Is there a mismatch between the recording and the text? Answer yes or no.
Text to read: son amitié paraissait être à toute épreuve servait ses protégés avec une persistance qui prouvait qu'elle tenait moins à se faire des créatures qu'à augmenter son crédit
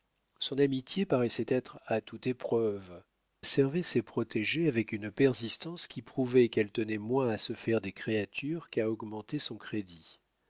no